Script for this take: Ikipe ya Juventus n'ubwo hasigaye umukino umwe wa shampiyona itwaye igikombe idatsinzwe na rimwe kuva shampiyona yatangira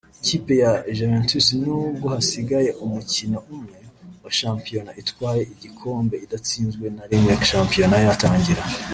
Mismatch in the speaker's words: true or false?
true